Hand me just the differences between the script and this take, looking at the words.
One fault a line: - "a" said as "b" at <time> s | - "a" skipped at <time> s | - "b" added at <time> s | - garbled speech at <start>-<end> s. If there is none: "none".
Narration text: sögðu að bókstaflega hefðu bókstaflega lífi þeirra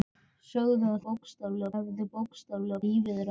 none